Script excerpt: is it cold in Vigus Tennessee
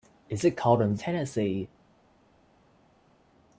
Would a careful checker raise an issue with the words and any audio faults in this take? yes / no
yes